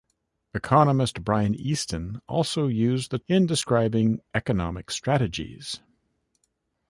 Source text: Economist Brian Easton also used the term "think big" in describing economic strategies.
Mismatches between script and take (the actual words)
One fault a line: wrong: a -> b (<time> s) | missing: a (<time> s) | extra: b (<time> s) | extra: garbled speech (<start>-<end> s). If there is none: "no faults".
missing: term think big (3.2 s)